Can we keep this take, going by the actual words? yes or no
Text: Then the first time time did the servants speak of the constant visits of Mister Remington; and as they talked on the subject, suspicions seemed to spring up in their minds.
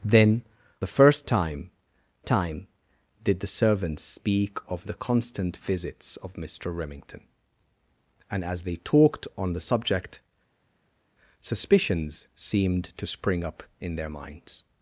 yes